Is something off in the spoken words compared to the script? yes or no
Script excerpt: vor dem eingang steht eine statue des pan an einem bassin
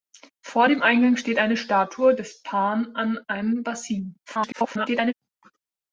yes